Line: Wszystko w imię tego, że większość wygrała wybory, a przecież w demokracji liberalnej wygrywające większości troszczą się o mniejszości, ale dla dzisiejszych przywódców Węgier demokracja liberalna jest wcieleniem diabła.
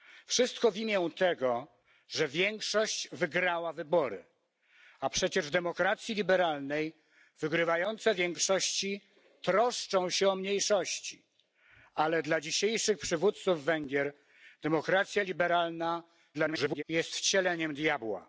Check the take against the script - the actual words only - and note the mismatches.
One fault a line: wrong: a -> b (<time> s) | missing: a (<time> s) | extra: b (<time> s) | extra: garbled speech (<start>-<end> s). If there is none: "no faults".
extra: garbled speech (16.3-16.8 s)